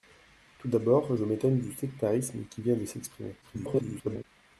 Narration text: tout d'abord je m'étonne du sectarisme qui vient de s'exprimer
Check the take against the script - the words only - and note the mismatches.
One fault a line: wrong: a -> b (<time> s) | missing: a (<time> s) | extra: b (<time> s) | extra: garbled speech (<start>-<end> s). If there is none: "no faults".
extra: garbled speech (3.4-4.2 s)